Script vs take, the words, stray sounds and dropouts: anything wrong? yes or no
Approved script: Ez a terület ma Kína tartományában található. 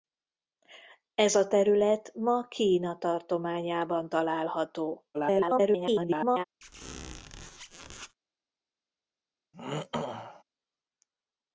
yes